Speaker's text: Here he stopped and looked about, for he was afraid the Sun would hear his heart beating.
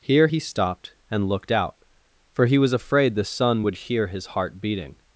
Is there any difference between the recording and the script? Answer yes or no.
yes